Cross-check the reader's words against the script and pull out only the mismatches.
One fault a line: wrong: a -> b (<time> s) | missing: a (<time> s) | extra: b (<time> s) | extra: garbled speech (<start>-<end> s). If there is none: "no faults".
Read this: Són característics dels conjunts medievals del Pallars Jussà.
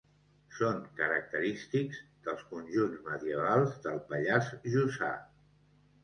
no faults